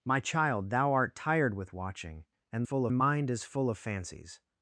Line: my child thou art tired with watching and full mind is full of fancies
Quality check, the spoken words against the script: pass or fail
pass